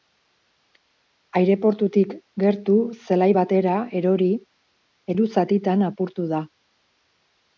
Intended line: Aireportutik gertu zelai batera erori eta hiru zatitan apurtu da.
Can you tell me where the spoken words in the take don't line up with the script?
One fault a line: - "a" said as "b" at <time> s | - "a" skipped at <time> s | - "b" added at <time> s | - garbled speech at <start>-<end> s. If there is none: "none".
- "eta" skipped at 4.3 s